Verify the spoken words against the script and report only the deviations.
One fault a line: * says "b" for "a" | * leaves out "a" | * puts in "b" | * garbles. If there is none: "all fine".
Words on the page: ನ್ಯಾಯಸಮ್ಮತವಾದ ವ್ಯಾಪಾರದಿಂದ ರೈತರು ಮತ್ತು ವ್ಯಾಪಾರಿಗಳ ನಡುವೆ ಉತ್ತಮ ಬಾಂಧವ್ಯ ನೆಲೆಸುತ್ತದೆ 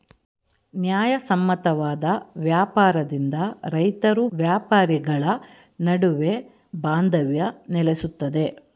* leaves out "ಮತ್ತು"
* leaves out "ಉತ್ತಮ"